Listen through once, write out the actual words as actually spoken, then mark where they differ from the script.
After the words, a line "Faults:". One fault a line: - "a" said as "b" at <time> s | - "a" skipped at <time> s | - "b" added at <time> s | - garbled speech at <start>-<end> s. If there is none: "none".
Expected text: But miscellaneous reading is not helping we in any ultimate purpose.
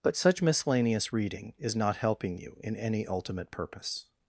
But such miscellaneous reading is not helping you in any ultimate purpose.
Faults:
- "such" added at 0.1 s
- "we" said as "you" at 2.4 s